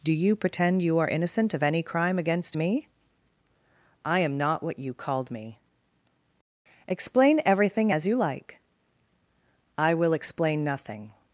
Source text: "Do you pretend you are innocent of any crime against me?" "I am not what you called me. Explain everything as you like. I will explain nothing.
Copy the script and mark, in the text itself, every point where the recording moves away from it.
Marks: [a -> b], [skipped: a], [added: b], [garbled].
"Do you pretend you are innocent of any crime against me?" "I am not what you called me. Explain everything as you like. I will explain nothing.